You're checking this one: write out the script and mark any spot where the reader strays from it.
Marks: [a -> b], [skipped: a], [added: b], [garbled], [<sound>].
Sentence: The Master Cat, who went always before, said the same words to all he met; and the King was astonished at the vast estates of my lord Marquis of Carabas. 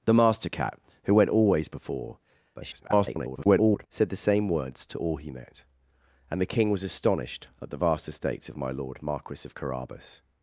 The Master Cat, who went always before, [garbled] said the same words to all he met; and the King was astonished at the vast estates of my lord Marquis of Carabas.